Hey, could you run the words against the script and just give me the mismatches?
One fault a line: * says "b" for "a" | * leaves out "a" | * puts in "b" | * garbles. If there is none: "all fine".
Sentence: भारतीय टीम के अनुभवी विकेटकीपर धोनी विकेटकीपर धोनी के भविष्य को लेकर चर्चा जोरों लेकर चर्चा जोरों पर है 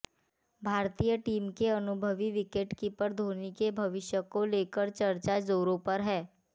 * leaves out "विकेटकीपर धोनी"
* leaves out "लेकर चर्चा जोरों"